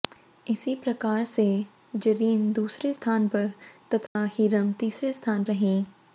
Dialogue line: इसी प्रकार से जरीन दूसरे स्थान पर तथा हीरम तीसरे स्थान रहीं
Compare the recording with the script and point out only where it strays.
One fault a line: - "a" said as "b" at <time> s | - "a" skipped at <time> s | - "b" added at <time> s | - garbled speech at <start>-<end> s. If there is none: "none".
none